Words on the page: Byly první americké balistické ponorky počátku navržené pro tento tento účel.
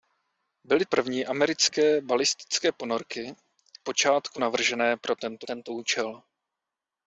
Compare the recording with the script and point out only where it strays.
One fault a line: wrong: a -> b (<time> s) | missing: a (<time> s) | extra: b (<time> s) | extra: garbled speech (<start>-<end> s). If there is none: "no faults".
no faults